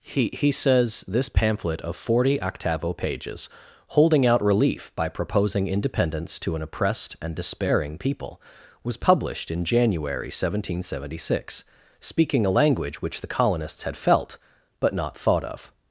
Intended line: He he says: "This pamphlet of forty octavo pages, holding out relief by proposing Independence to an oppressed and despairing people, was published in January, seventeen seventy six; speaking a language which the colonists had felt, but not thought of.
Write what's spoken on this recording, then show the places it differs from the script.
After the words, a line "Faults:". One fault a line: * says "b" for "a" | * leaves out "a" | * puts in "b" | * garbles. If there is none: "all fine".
He he says: "This pamphlet of forty octavo pages, holding out relief by proposing Independence to an oppressed and despairing people, was published in January, seventeen seventy six; speaking a language which the colonists had felt, but not thought of.
Faults:
all fine